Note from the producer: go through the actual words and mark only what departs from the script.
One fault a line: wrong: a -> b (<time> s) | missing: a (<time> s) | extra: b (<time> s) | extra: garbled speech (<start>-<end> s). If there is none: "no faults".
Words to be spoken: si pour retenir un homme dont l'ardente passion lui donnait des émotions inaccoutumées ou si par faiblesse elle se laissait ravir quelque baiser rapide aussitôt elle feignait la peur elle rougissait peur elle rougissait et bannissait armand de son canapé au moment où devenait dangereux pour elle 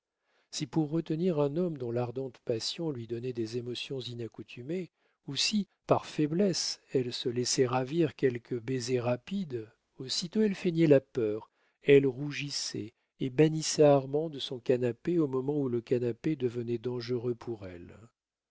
missing: peur elle rougissait (12.9 s)
extra: le canapé (15.7 s)